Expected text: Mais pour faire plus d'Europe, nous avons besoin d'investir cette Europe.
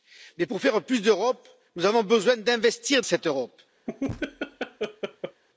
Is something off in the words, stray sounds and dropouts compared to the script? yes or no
yes